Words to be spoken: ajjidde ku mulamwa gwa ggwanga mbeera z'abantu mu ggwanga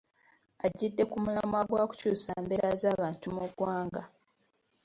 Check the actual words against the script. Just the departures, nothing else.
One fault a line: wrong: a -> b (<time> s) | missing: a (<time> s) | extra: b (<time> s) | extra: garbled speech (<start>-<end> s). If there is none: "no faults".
wrong: ggwanga -> kukyusa (1.9 s)